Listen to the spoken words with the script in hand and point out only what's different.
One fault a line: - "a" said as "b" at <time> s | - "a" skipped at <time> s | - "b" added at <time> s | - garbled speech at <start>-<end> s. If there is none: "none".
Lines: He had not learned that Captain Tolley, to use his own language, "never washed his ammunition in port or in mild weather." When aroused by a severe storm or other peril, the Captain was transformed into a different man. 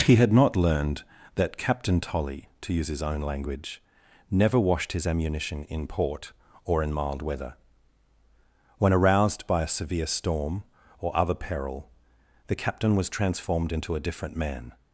none